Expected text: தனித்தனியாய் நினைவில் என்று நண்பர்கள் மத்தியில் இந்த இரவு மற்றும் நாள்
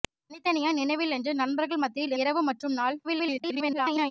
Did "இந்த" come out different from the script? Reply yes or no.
yes